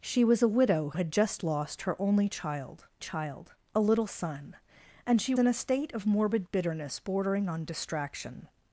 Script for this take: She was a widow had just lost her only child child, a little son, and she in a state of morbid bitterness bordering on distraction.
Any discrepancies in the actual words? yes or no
no